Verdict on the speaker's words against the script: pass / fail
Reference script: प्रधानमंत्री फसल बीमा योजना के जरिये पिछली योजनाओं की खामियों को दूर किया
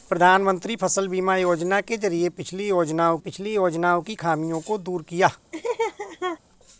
fail